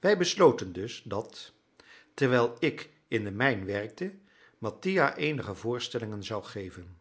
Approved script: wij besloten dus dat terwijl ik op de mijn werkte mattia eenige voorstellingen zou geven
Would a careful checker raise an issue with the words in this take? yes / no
yes